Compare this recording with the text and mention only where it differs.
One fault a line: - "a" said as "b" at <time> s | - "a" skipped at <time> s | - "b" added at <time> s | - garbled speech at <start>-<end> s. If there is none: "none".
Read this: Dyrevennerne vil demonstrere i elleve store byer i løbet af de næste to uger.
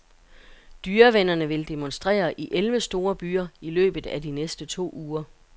none